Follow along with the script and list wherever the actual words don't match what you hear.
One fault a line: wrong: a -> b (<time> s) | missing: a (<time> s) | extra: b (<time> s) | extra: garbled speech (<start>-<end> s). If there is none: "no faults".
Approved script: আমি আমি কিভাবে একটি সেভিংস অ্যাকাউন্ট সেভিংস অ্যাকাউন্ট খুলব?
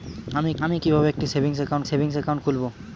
no faults